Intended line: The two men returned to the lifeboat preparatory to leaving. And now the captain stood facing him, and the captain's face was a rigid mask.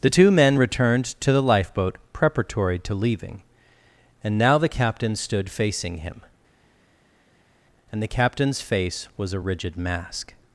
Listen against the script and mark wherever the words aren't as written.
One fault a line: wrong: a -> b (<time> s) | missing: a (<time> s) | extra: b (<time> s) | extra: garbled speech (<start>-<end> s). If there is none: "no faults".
no faults